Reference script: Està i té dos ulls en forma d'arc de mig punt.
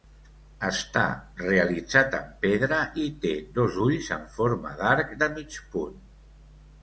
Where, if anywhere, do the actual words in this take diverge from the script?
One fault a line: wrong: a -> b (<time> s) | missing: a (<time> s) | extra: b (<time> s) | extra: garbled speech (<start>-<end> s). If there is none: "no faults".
extra: realitzat en pedra (1.4 s)